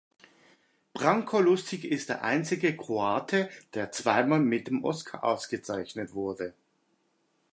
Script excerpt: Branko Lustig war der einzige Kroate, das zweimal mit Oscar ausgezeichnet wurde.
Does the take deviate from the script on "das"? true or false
true